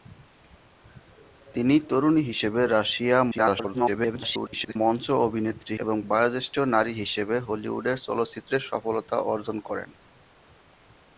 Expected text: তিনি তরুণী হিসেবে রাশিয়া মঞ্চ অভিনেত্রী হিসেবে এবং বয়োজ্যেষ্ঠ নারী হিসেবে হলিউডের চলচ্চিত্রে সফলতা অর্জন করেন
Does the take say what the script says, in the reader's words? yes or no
no